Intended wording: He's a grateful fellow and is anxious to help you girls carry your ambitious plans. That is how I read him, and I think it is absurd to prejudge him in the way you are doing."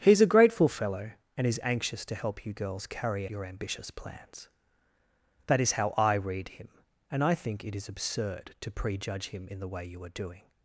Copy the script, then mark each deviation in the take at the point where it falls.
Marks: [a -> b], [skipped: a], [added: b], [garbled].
He's a grateful fellow and is anxious to help you girls carry your ambitious plans. That is how I read him, and I think it is absurd to prejudge him in the way you are doing."